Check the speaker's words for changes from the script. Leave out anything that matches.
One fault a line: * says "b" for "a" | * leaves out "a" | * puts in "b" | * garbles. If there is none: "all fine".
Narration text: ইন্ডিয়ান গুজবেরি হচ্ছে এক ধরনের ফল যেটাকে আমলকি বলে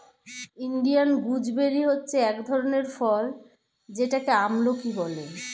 all fine